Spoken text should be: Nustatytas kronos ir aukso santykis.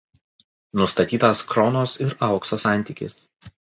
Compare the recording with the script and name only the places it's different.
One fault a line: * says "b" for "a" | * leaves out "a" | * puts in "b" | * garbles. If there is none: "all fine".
all fine